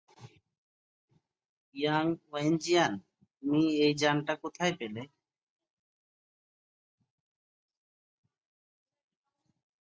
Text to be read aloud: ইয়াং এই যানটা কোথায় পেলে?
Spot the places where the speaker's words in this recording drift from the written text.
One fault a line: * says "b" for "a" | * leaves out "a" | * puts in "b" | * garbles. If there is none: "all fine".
* puts in "ওয়েনজিয়ান তুমি"